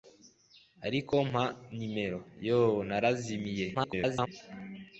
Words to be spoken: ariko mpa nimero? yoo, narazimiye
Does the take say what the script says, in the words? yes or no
no